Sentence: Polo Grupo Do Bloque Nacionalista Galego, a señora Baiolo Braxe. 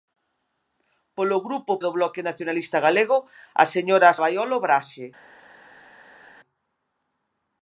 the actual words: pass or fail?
pass